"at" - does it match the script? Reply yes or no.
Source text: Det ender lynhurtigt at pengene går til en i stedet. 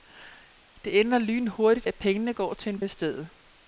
yes